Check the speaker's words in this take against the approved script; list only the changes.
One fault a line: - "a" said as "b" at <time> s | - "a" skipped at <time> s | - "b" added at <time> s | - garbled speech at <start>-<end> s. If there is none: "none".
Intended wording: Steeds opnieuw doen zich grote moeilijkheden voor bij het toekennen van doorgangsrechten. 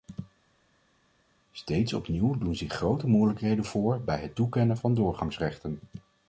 none